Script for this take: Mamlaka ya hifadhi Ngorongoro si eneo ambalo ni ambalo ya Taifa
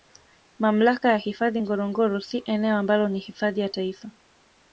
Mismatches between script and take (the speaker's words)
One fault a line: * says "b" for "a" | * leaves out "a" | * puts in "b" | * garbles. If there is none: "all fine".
* says "hifadhi" for "ambalo"